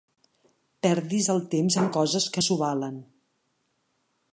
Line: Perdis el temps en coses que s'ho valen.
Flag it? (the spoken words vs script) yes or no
no